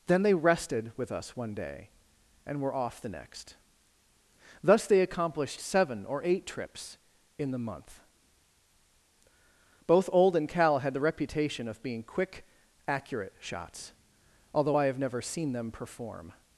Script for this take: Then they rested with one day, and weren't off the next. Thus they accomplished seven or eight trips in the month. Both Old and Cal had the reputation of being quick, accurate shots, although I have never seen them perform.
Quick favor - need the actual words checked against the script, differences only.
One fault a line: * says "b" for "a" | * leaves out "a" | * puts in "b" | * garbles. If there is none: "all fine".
* puts in "us"
* says "were" for "weren't"